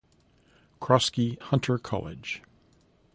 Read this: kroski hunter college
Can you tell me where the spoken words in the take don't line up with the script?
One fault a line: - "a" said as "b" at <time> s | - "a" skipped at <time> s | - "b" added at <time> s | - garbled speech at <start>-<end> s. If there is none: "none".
none